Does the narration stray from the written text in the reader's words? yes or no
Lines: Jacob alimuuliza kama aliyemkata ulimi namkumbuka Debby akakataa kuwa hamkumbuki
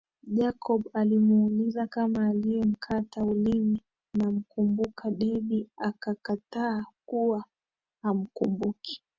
no